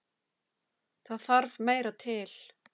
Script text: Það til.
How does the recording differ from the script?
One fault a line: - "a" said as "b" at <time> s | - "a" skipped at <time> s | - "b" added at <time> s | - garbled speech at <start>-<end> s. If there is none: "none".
- "þarf meira" added at 1.3 s